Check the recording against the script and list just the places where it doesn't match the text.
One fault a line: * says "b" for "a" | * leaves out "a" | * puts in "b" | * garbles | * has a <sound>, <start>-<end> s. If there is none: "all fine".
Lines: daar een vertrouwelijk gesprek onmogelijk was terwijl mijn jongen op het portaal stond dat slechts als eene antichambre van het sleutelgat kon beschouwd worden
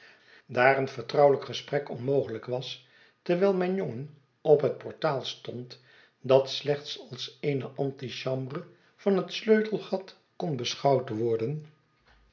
all fine